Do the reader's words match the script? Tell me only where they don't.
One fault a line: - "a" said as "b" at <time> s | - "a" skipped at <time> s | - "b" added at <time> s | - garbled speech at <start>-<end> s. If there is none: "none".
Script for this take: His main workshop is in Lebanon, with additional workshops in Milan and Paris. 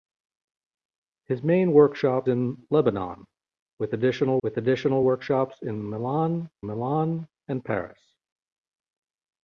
- "is" skipped at 2.3 s
- "with additional" added at 4.4 s
- "Milan" added at 6.7 s